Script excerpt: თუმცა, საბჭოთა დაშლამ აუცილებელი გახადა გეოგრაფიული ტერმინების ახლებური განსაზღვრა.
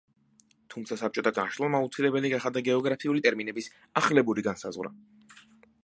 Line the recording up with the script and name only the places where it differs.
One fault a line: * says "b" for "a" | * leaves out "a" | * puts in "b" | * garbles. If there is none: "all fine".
all fine